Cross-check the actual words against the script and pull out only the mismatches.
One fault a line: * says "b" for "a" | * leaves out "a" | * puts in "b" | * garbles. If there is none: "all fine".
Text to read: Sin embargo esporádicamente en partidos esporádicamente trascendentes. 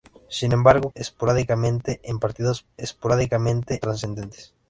all fine